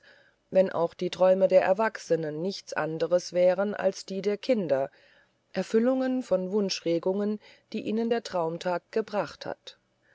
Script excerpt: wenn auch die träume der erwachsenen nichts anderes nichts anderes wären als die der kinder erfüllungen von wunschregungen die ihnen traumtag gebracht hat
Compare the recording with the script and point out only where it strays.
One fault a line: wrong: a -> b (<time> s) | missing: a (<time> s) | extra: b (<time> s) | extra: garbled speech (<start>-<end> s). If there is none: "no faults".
missing: nichts anderes (3.3 s)
extra: der (8.1 s)